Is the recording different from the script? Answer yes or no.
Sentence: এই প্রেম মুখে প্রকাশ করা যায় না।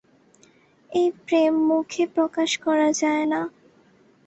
no